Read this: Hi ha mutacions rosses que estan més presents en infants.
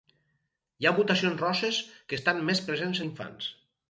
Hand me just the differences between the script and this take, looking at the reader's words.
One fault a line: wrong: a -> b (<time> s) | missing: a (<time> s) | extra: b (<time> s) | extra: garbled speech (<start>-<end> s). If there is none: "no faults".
no faults